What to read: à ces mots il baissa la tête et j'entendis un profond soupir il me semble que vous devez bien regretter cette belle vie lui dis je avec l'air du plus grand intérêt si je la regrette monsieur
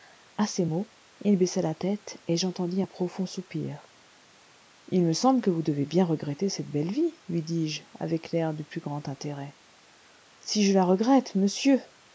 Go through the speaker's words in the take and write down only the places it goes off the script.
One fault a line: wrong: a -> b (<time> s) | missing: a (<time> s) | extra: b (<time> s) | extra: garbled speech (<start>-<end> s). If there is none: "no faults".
no faults